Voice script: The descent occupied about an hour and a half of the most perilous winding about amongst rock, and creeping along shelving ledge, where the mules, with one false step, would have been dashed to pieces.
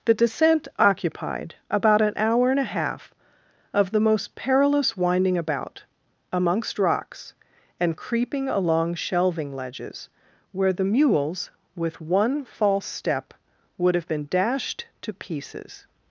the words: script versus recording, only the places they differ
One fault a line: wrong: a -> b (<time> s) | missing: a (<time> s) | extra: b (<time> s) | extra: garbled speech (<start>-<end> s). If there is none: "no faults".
wrong: rock -> rocks (6.8 s)
wrong: ledge -> ledges (9.6 s)